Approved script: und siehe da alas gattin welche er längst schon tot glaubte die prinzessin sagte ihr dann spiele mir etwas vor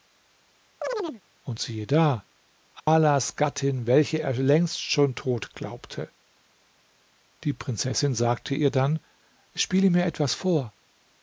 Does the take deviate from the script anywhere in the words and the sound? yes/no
yes